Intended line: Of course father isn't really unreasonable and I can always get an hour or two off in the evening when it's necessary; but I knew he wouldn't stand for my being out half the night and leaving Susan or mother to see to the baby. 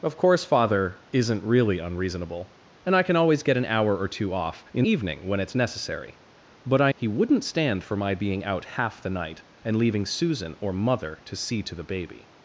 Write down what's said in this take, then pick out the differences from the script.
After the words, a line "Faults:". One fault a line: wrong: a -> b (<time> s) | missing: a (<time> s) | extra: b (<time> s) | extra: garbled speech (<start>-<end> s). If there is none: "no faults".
Of course father isn't really unreasonable and I can always get an hour or two off in evening when it's necessary; but I he wouldn't stand for my being out half the night and leaving Susan or mother to see to the baby.
Faults:
missing: the (4.8 s)
missing: knew (6.9 s)